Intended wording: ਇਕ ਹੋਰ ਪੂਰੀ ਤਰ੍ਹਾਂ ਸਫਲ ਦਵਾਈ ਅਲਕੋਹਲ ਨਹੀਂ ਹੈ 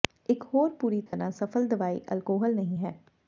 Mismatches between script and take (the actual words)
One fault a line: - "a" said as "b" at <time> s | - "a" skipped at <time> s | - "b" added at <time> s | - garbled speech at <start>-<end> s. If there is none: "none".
none